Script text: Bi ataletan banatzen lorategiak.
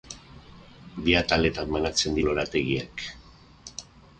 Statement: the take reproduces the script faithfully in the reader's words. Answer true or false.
true